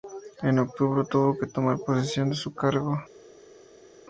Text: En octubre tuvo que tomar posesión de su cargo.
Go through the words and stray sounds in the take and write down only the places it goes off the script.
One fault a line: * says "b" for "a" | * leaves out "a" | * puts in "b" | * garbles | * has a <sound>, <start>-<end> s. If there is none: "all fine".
all fine